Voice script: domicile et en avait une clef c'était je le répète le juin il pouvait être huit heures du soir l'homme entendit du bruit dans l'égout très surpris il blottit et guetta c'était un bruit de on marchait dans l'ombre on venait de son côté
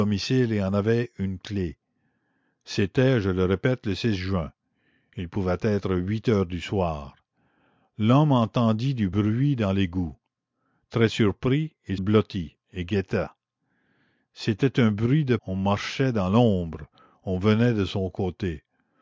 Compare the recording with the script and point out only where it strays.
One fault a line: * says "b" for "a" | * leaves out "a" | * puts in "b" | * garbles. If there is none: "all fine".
all fine